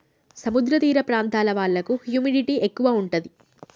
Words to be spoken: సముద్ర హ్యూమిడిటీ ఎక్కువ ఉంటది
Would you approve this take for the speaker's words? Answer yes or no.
no